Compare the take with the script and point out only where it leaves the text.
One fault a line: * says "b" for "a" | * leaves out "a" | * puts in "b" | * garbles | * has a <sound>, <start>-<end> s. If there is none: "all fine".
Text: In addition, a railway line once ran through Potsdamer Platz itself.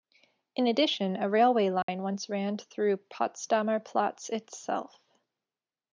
* has a dropout, 1.8-1.9 s